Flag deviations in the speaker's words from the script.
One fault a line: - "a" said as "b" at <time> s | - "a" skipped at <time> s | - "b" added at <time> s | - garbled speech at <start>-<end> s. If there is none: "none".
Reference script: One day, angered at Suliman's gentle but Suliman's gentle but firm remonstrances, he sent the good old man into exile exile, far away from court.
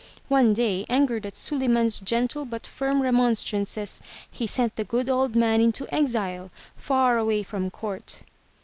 - "Suliman's gentle but" skipped at 2.7 s
- "exile" skipped at 6.5 s